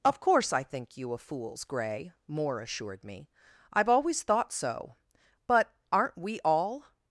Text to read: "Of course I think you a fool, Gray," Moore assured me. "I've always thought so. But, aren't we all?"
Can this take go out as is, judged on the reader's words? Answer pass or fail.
fail